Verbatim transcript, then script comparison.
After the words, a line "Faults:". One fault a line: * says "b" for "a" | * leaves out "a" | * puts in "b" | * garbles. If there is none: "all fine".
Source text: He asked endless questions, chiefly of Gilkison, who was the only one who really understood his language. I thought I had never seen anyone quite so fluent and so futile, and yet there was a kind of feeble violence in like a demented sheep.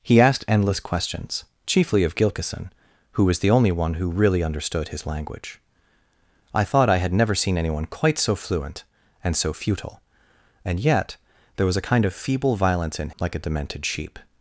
He asked endless questions, chiefly of Gilkison, who was the only one who really understood his language. I thought I had never seen anyone quite so fluent and so futile, and yet there was a kind of feeble violence in like a demented sheep.
Faults:
all fine